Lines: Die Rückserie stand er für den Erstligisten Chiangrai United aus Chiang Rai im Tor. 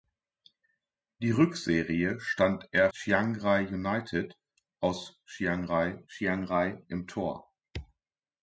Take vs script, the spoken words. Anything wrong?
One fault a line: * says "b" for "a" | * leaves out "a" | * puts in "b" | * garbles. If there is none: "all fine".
* leaves out "für den Erstligisten"
* puts in "Chiang Rai"